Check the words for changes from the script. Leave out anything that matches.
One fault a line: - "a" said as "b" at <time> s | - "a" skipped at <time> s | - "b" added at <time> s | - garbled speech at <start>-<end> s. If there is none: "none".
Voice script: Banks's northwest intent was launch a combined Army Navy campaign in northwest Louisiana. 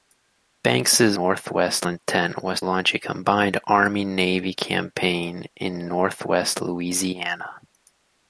none